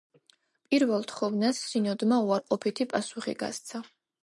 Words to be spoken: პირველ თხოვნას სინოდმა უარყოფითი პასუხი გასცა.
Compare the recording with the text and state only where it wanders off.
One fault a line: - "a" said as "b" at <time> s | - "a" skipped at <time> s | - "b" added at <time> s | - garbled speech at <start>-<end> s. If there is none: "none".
none